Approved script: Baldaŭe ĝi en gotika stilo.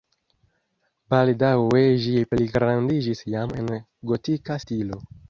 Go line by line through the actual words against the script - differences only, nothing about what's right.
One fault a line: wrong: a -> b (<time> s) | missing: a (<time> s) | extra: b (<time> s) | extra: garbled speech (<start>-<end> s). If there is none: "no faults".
extra: pligrandiĝis jam (2.3 s)